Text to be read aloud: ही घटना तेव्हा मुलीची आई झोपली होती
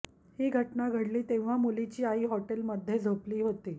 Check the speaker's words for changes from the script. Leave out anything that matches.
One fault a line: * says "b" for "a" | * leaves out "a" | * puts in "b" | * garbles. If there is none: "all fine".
* puts in "घडली"
* puts in "हॉटेलमध्ये"